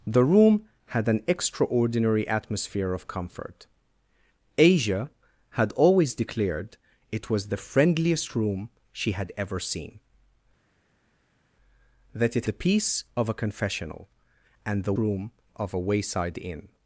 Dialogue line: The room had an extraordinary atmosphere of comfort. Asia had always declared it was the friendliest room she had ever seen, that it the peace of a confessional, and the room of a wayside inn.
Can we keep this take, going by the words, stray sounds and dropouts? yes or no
yes